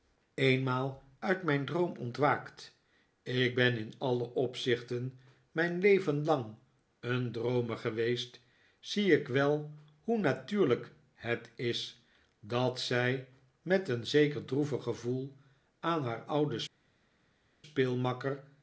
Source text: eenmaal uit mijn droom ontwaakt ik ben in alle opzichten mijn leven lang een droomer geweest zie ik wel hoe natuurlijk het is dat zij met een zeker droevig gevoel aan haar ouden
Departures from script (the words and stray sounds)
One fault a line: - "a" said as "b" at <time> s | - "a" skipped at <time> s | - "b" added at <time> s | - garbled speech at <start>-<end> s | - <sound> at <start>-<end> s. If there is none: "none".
none